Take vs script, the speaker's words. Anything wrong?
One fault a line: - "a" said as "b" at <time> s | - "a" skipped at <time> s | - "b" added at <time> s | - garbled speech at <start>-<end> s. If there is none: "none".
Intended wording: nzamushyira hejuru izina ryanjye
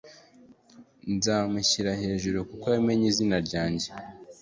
- "kuko yamenye" added at 2.5 s